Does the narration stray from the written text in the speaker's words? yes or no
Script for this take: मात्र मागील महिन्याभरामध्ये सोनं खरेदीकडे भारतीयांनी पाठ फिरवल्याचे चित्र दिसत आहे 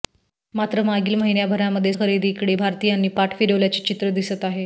yes